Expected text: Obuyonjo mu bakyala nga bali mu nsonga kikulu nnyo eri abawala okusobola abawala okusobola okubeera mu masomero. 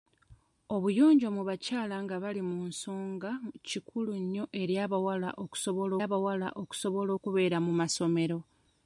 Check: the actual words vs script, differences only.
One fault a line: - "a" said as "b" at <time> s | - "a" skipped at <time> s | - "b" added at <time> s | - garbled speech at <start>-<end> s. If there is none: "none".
none